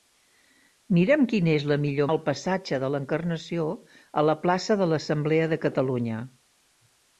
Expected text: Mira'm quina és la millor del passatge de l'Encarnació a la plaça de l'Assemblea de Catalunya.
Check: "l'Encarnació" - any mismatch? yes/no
no